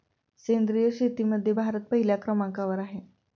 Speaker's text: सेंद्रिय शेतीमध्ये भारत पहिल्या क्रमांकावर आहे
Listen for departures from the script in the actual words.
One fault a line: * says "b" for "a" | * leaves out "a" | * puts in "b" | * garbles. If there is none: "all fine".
all fine